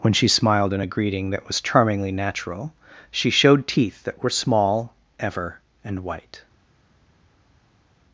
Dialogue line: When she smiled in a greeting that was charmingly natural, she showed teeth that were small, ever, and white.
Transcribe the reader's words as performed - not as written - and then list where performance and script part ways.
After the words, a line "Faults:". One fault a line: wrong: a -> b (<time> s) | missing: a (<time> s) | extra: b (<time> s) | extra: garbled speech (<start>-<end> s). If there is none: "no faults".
When she smiled in a greeting that was charmingly natural, she showed teeth that were small, ever, and white.
Faults:
no faults